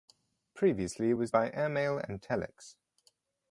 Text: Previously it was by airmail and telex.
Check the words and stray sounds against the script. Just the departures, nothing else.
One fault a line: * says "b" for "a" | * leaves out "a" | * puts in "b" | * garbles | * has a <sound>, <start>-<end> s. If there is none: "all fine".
all fine